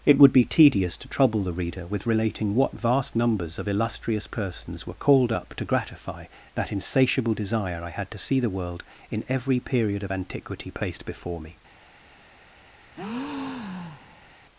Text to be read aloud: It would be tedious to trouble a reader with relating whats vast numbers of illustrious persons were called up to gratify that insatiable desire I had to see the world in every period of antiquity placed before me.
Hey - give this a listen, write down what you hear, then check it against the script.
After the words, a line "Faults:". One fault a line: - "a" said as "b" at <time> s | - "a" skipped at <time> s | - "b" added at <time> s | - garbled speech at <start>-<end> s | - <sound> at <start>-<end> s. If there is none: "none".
It would be tedious to trouble the reader with relating what vast numbers of illustrious persons were called up to gratify that insatiable desire I had to see the world in every period of antiquity placed before me.
Faults:
- "a" said as "the" at 1.4 s
- "whats" said as "what" at 2.5 s
- breath at 12.9-14.4 s